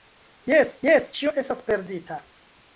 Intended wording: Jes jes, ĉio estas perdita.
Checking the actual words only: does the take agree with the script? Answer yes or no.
yes